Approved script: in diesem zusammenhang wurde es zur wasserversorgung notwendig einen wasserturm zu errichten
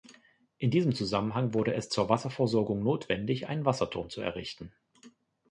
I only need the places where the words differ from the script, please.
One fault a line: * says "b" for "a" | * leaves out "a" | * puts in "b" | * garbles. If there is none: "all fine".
all fine